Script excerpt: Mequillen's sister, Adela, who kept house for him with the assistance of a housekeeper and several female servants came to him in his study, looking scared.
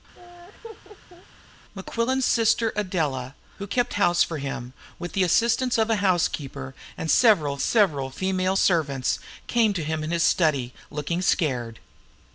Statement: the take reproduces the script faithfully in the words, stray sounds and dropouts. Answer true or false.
false